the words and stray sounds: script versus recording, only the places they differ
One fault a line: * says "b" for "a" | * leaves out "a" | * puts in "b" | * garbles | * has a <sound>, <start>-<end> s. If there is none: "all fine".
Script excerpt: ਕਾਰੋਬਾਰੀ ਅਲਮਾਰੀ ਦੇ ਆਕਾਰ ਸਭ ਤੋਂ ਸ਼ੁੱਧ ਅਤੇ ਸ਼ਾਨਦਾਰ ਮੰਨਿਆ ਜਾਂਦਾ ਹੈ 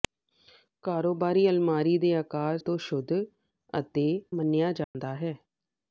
* leaves out "ਸਭ"
* leaves out "ਸ਼ਾਨਦਾਰ"
* has a dropout, 4.8-4.9 s